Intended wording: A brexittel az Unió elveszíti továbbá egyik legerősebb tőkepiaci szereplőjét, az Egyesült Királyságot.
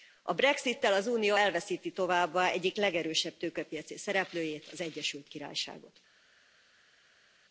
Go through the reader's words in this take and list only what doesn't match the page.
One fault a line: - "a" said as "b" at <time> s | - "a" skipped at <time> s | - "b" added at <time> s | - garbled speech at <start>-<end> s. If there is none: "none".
none